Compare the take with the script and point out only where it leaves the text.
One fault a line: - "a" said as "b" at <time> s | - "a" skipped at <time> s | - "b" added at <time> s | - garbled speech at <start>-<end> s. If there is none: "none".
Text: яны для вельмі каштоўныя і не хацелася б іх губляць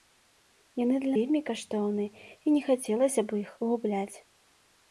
none